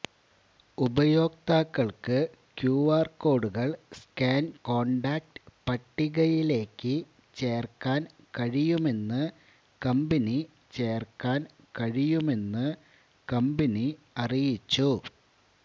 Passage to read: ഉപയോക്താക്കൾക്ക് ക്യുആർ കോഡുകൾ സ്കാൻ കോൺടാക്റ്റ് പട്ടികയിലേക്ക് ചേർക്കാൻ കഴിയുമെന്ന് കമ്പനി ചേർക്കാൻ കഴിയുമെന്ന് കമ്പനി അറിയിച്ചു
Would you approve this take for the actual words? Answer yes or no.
yes